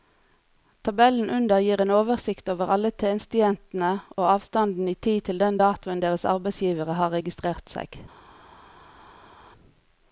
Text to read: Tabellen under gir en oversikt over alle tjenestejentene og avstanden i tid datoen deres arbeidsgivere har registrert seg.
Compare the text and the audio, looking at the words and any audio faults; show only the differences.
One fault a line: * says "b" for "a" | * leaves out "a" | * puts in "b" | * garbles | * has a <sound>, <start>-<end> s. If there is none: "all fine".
* puts in "til den"